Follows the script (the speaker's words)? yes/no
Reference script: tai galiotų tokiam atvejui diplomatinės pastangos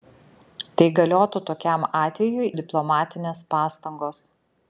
yes